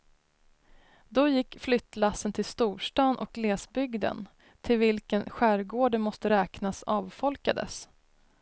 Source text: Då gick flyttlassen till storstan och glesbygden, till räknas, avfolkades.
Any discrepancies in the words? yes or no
yes